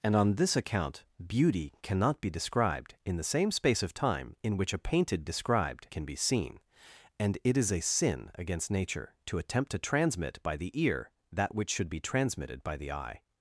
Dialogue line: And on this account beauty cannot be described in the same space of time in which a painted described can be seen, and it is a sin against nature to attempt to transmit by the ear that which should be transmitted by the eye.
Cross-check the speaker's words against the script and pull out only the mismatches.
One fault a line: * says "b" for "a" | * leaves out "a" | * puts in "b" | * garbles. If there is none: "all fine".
all fine